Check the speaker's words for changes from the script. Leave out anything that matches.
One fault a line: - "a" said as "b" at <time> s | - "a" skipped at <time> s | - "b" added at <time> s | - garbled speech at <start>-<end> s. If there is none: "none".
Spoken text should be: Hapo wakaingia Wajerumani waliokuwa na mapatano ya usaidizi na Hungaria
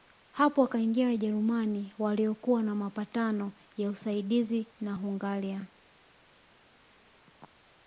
none